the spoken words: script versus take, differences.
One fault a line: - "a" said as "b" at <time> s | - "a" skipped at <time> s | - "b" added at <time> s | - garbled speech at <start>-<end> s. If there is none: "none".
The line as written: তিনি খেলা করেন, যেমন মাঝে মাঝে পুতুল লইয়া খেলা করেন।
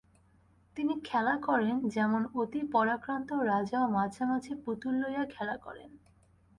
- "অতি পরাক্রান্ত রাজাও" added at 2.3 s